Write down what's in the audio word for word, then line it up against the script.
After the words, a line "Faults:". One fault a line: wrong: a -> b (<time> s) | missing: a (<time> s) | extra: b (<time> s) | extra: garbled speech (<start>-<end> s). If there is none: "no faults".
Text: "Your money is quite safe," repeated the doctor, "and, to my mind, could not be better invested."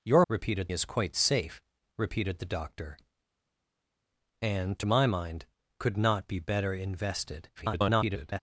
"Your repeated is quite safe," repeated the doctor, "and, to my mind, could not be better invested." [garbled]
Faults:
wrong: money -> repeated (0.3 s)
extra: garbled speech (7.6-8.4 s)